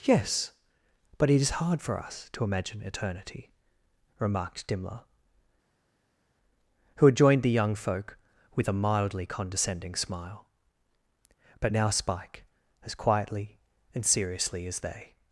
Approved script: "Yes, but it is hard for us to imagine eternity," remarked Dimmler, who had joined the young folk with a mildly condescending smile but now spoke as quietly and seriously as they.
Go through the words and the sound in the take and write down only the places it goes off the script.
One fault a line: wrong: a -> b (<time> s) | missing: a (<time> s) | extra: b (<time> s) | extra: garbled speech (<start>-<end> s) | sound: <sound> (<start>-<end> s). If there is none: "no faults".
wrong: spoke -> spike (11.9 s)